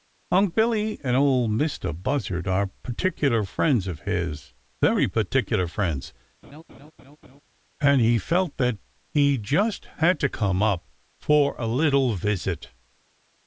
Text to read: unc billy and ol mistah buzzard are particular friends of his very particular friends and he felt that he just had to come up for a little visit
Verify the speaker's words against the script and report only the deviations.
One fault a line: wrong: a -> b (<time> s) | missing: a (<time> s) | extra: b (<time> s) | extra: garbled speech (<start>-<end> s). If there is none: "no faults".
no faults